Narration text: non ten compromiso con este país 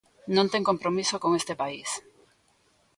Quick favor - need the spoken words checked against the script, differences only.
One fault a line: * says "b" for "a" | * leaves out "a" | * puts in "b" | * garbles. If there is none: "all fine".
all fine